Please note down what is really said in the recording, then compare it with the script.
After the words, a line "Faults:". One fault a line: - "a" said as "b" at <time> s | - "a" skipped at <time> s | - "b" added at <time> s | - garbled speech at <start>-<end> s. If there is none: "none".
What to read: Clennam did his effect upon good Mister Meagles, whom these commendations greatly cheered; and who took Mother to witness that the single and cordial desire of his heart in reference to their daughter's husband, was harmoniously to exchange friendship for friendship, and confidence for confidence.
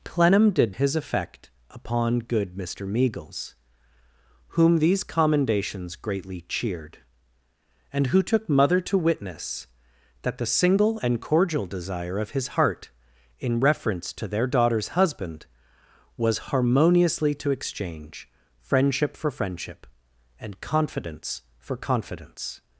Clennam did his effect upon good Mister Meagles, whom these commendations greatly cheered; and who took Mother to witness that the single and cordial desire of his heart in reference to their daughter's husband, was harmoniously to exchange friendship for friendship, and confidence for confidence.
Faults:
none